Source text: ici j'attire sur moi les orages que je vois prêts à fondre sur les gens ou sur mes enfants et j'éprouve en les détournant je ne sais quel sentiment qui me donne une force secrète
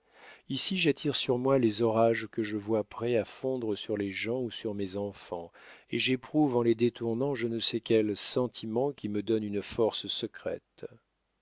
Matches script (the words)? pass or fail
pass